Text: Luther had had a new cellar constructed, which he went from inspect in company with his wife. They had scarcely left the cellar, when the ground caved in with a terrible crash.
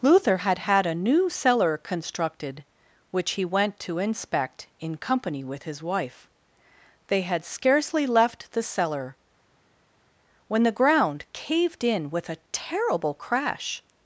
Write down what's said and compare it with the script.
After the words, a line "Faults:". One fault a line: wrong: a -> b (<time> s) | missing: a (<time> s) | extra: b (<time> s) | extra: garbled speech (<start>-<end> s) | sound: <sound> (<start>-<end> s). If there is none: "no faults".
Luther had had a new cellar constructed, which he went to inspect in company with his wife. They had scarcely left the cellar, when the ground caved in with a terrible crash.
Faults:
wrong: from -> to (3.8 s)